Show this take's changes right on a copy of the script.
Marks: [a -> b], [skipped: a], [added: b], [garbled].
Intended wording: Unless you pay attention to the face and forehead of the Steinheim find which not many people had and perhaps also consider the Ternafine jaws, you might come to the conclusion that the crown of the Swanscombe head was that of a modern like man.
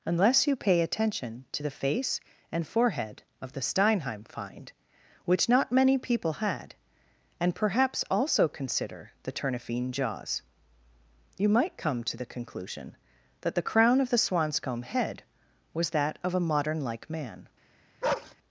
Unless you pay attention to the face and forehead of the Steinheim find which not many people had and perhaps also consider the Ternafine jaws, you might come to the conclusion that the crown of the Swanscombe head was that of a modern like man.